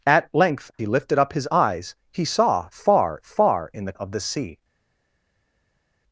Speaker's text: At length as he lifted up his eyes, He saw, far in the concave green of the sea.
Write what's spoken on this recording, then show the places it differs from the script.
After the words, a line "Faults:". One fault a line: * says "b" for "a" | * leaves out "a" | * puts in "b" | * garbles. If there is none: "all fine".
At length he lifted up his eyes, He saw, far far in the of the sea.
Faults:
* leaves out "as"
* puts in "far"
* leaves out "concave green"